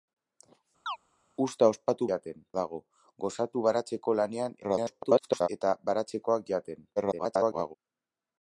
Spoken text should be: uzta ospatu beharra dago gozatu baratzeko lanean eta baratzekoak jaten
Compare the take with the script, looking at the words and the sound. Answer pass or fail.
fail